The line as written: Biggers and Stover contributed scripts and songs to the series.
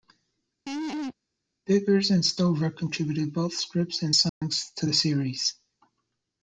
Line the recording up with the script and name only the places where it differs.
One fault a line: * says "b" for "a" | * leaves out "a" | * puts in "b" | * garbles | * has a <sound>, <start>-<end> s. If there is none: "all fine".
* has a laugh, 0.7-1.1 s
* puts in "both"
* has a dropout, 4.3-4.4 s